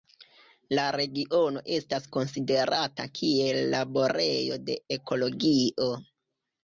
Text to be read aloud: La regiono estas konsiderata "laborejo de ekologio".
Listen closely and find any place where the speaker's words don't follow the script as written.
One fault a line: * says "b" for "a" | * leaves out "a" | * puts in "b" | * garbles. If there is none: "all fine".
* puts in "kiel"